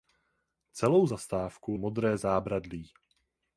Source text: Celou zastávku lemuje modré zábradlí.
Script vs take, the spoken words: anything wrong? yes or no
yes